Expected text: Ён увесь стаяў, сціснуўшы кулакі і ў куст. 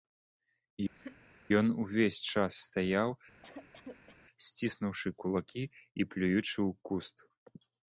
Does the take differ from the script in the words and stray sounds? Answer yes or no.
yes